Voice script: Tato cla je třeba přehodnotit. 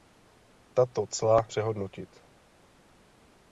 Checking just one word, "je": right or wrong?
wrong